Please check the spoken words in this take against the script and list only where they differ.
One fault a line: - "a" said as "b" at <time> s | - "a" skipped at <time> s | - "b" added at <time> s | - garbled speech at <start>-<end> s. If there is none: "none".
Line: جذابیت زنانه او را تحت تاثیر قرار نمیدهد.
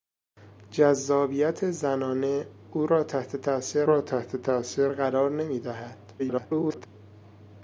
- "را تحت تاثیر" added at 3.8 s
- garbled speech at 6.2-6.9 s